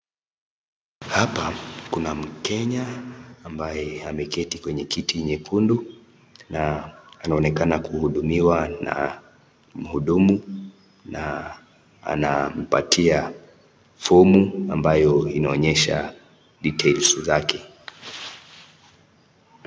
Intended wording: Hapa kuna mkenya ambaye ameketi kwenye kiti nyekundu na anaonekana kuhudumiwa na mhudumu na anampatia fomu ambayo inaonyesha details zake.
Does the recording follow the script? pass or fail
pass